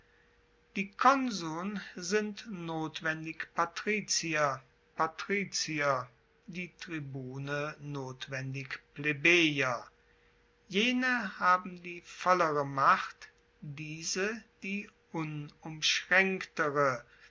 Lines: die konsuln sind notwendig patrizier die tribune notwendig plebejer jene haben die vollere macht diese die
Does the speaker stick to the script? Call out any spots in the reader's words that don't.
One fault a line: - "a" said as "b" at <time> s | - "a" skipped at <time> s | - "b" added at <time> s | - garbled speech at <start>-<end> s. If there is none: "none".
- "patrizier" added at 4.9 s